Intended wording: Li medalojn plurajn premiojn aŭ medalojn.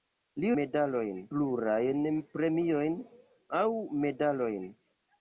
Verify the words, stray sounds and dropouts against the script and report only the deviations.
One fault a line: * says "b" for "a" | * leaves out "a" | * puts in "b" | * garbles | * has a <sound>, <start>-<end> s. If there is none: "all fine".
all fine